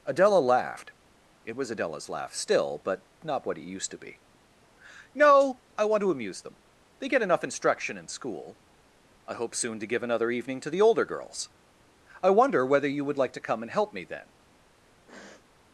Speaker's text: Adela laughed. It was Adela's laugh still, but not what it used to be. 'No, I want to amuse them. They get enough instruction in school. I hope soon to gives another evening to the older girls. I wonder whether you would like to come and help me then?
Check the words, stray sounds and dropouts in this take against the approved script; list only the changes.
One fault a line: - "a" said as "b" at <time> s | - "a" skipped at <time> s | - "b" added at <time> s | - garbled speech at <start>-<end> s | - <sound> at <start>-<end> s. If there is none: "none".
- "gives" said as "give" at 9.9 s
- sniff at 15.1-15.5 s